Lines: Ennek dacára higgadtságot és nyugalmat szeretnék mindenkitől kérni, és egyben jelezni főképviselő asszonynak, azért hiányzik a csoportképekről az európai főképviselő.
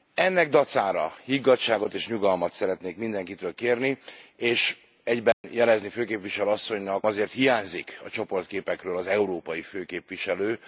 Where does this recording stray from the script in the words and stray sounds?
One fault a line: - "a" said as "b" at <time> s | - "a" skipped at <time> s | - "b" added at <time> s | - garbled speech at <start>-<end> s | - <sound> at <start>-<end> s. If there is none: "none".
- dropout at 5.3-5.4 s